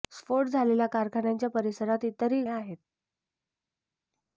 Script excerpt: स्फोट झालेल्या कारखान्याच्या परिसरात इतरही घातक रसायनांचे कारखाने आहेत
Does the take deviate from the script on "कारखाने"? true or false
true